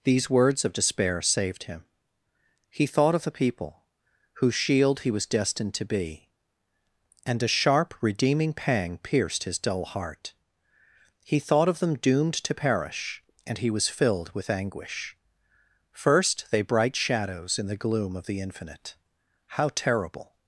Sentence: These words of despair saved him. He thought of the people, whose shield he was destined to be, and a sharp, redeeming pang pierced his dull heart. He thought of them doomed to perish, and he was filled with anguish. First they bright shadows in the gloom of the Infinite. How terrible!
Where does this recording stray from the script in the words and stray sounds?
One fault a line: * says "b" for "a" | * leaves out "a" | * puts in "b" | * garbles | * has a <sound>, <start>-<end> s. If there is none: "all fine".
all fine